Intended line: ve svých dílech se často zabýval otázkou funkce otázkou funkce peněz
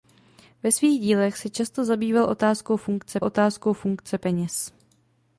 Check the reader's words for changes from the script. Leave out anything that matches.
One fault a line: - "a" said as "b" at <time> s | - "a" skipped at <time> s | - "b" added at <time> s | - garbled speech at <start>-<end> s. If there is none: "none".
none